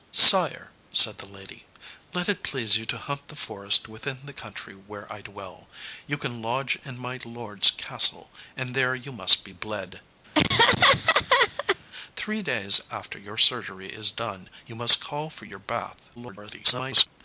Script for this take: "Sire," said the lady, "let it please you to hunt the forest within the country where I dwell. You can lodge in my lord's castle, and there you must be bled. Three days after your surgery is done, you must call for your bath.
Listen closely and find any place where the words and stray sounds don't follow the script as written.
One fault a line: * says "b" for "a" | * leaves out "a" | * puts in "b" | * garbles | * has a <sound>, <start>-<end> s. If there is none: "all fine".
* has a laugh, 10.3-11.8 s
* garbles